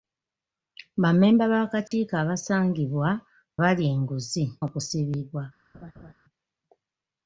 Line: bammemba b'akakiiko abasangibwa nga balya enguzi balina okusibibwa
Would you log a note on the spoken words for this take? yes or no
yes